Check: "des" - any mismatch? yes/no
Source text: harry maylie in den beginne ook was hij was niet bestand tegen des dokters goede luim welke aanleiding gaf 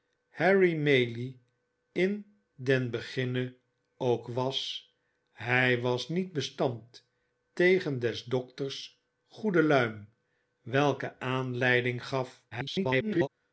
no